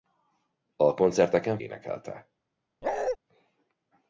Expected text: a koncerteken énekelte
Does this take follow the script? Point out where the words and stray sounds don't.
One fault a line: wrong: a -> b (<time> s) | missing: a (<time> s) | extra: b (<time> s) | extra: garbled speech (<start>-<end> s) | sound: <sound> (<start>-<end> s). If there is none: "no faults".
sound: bark (2.8-3.2 s)